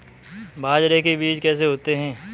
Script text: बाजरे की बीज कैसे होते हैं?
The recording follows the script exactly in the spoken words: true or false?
false